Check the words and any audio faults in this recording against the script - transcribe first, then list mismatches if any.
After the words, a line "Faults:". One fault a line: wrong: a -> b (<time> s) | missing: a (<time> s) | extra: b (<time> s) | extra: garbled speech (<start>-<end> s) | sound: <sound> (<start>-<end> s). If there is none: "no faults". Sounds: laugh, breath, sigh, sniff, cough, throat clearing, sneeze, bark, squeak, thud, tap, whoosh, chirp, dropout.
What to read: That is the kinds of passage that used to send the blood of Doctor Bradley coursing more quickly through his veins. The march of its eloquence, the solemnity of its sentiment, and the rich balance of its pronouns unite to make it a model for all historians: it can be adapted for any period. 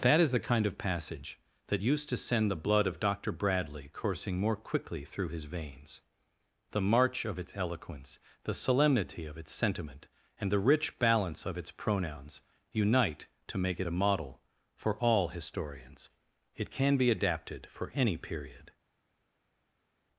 That is the kind of passage that used to send the blood of Doctor Bradley coursing more quickly through his veins. The march of its eloquence, the solemnity of its sentiment, and the rich balance of its pronouns unite to make it a model for all historians: it can be adapted for any period.
Faults:
wrong: kinds -> kind (0.4 s)